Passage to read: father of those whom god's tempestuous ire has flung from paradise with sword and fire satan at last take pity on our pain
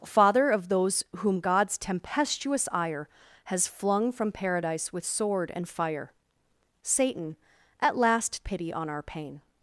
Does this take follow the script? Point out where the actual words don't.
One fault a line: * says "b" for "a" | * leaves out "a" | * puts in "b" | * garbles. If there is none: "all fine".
* leaves out "take"